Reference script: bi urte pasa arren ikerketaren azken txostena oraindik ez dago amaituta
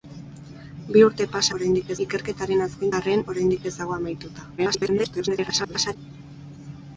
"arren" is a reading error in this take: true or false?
true